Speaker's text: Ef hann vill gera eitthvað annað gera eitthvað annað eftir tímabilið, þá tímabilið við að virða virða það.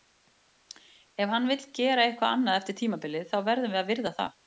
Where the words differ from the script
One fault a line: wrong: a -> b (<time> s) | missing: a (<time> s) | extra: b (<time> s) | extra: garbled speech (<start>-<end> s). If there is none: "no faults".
missing: gera eitthvað annað (2.6 s)
wrong: tímabilið -> verðum (3.5 s)
missing: virða (4.2 s)